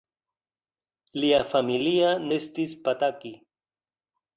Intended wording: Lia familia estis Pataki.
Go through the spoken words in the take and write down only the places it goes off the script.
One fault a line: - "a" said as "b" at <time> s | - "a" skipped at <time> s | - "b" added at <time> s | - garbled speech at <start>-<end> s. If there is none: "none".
none